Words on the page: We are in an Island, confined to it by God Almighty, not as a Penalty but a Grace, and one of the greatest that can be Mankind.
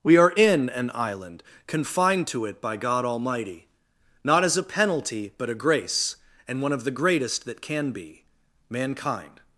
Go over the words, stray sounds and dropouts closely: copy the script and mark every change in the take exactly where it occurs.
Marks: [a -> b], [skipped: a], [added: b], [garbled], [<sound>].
We are in an Island, confined to it by God Almighty, not as a Penalty but a Grace, and one of the greatest that can be Mankind.